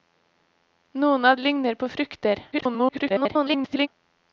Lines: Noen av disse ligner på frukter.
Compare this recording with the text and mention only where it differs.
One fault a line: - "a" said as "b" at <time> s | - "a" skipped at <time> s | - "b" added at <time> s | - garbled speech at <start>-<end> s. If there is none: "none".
- "disse" skipped at 1.4 s
- garbled speech at 2.5-3.9 s